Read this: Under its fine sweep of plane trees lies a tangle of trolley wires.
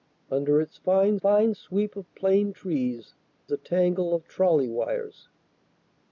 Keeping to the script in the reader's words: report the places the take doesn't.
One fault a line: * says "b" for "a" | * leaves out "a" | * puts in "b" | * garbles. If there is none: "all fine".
* puts in "fine"
* leaves out "lies"